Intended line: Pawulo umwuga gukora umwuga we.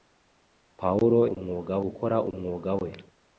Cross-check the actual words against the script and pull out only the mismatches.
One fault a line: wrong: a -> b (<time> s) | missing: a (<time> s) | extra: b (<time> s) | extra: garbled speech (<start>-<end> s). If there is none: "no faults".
no faults